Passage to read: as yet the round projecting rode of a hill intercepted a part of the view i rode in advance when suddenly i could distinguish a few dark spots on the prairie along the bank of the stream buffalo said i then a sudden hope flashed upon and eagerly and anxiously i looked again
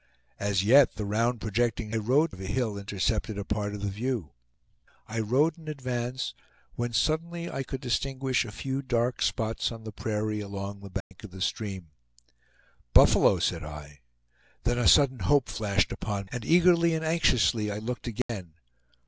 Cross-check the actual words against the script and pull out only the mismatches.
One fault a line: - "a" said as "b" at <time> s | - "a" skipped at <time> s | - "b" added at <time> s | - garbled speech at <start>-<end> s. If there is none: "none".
none